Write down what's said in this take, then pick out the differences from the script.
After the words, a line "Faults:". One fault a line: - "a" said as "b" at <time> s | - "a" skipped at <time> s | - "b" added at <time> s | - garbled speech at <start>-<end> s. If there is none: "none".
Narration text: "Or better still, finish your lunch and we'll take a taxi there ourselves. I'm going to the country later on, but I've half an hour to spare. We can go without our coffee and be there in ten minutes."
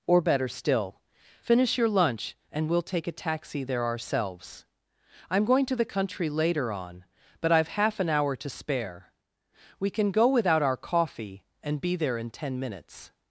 "Or better still, finish your lunch and we'll take a taxi there ourselves. I'm going to the country later on, but I've half an hour to spare. We can go without our coffee and be there in ten minutes."
Faults:
none